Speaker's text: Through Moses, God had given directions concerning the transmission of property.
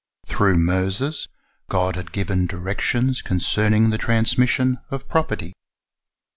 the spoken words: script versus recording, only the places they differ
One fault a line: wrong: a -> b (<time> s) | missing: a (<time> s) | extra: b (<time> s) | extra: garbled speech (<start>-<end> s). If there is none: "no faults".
no faults